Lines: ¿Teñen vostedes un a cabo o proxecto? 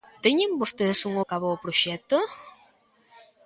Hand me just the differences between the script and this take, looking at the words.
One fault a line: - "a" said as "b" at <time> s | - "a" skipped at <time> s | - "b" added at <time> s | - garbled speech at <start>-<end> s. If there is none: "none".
none